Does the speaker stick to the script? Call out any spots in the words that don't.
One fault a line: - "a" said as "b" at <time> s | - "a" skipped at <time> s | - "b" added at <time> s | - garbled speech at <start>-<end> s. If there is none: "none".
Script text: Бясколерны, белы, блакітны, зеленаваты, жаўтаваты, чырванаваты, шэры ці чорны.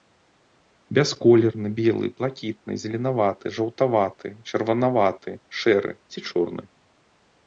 none